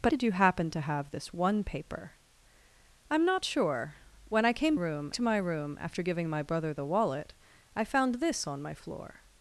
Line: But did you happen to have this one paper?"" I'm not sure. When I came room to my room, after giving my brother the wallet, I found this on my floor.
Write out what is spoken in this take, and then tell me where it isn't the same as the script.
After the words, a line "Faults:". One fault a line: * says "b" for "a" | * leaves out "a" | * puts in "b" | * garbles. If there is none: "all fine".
But did you happen to have this one paper?"" I'm not sure. When I came room to my room, after giving my brother the wallet, I found this on my floor.
Faults:
all fine